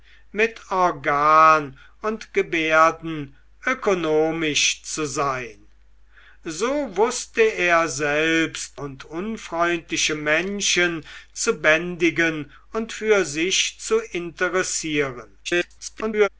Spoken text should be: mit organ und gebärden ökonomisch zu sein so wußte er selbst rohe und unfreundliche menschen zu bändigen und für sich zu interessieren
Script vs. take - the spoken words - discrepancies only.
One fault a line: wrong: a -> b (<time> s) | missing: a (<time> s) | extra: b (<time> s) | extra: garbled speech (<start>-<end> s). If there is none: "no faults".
missing: rohe (8.8 s)
extra: garbled speech (15.4-16.3 s)